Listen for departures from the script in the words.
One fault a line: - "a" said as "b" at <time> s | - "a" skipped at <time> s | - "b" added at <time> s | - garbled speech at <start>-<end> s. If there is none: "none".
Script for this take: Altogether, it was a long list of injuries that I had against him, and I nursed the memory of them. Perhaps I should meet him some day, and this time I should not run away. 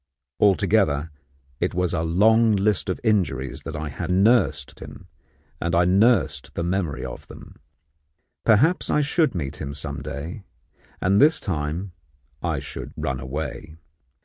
- "against" said as "nursed" at 4.1 s
- "not" skipped at 13.0 s